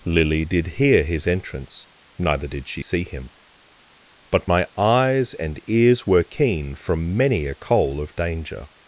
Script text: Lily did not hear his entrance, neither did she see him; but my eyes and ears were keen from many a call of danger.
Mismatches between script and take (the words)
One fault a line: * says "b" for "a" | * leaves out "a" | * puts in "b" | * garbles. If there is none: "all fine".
* leaves out "not"
* says "coal" for "call"